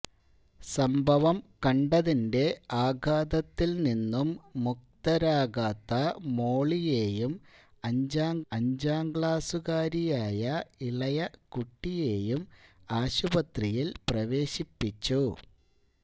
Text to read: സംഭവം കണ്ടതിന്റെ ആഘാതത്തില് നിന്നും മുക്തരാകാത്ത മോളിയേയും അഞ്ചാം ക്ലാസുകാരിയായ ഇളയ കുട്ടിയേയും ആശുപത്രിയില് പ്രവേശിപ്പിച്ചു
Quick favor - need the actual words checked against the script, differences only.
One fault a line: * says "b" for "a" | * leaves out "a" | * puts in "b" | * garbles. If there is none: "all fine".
* puts in "അഞ്ചാം"